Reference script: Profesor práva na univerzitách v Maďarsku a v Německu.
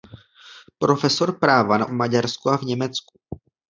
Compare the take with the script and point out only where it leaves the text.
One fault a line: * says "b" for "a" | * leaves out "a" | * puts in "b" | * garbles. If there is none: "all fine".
* leaves out "univerzitách"